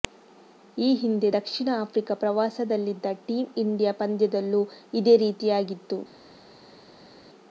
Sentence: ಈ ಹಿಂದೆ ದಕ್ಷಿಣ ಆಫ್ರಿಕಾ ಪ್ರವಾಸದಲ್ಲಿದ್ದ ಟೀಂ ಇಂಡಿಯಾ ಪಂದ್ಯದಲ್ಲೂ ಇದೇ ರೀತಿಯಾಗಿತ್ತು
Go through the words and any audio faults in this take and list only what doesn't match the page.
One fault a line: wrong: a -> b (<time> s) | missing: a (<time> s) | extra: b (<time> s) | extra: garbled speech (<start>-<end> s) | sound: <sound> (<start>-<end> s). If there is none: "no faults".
no faults